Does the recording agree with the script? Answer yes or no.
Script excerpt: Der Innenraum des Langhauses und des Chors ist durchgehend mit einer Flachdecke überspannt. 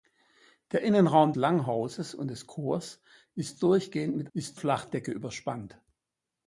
no